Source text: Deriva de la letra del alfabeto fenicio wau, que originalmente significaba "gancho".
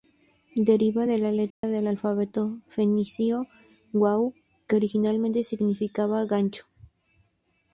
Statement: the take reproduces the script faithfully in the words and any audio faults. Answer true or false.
false